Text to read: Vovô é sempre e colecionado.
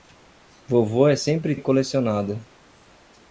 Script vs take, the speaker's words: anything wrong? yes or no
no